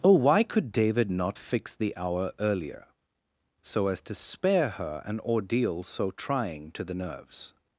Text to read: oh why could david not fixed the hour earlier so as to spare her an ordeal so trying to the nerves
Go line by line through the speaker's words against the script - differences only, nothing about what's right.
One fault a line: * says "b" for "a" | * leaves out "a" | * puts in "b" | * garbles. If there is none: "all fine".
all fine